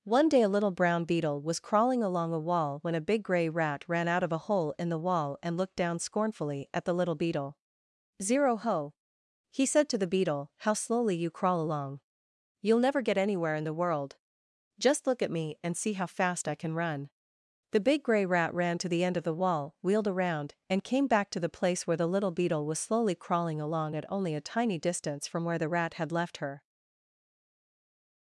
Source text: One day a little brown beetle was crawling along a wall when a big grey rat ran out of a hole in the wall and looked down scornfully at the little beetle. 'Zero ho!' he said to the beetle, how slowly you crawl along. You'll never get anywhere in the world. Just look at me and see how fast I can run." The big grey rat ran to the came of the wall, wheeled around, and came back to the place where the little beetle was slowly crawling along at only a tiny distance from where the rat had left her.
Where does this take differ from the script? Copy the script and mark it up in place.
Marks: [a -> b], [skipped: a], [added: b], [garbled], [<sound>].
One day a little brown beetle was crawling along a wall when a big grey rat ran out of a hole in the wall and looked down scornfully at the little beetle. 'Zero ho!' he said to the beetle, how slowly you crawl along. You'll never get anywhere in the world. Just look at me and see how fast I can run." The big grey rat ran to the [came -> end] of the wall, wheeled around, and came back to the place where the little beetle was slowly crawling along at only a tiny distance from where the rat had left her.